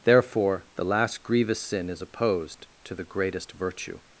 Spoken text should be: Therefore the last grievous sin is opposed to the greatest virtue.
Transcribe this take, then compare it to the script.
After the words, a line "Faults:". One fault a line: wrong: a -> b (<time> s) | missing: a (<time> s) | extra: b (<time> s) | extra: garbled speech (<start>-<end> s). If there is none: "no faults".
Therefore the last grievous sin is opposed to the greatest virtue.
Faults:
no faults